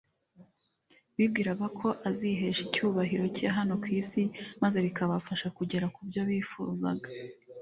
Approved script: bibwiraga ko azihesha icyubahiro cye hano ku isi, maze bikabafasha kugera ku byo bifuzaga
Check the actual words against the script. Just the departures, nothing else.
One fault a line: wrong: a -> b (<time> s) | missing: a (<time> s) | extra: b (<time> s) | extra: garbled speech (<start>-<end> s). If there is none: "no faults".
no faults